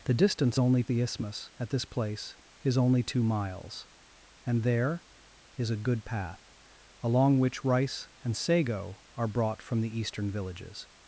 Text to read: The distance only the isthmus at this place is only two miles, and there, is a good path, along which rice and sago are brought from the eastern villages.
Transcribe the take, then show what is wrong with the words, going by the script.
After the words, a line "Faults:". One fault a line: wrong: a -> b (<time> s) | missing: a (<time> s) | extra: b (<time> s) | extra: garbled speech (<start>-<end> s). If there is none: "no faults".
The distance only the isthmus at this place is only two miles, and there, is a good path, along which rice and sago are brought from the eastern villages.
Faults:
no faults